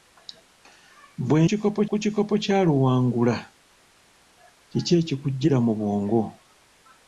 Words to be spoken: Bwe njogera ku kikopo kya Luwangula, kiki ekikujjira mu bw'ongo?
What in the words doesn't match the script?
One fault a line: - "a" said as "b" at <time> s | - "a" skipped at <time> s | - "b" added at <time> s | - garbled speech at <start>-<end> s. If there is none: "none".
- "njogera" said as "kikopo" at 1.5 s